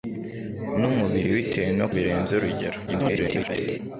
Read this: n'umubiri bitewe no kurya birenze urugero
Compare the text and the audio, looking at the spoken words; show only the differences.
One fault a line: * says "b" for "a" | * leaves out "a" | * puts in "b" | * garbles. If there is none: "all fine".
* leaves out "kurya"
* garbles